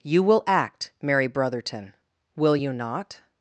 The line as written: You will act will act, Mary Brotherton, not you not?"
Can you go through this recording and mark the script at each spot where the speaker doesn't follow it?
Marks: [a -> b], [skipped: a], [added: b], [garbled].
You will act [skipped: will act,] Mary Brotherton, [not -> will] you not?"